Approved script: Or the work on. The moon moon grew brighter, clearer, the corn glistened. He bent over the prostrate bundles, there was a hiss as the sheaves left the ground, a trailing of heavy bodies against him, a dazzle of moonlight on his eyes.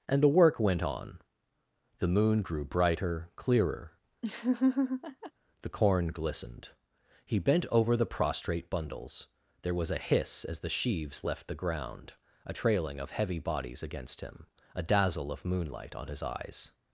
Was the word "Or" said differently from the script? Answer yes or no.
yes